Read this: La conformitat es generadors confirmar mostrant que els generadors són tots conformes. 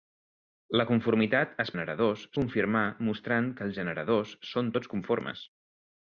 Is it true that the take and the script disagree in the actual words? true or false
false